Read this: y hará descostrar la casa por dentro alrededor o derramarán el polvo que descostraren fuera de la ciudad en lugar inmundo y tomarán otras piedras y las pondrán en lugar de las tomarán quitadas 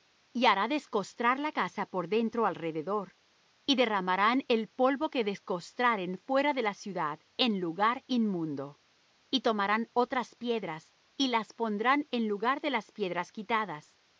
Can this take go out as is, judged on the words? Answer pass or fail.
fail